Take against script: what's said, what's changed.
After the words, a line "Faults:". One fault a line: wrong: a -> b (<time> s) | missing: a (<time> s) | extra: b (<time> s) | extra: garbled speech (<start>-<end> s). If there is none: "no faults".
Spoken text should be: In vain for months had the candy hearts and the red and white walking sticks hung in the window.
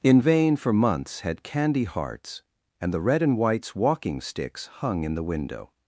In vain for months had candy hearts and the red and whites walking sticks hung in the window.
Faults:
missing: the (1.4 s)
wrong: white -> whites (3.4 s)